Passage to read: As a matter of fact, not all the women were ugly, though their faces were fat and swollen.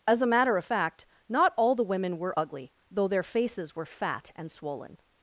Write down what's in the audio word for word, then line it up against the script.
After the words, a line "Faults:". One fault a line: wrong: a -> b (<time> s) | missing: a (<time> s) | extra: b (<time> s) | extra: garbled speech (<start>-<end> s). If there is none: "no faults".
As a matter of fact, not all the women were ugly, though their faces were fat and swollen.
Faults:
no faults